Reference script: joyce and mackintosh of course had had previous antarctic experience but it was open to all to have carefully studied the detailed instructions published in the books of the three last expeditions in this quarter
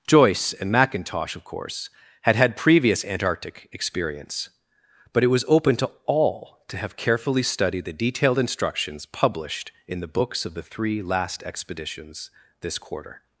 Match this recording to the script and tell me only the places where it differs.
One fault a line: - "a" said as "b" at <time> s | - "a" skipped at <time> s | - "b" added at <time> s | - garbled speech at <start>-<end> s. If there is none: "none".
- "in" skipped at 12.3 s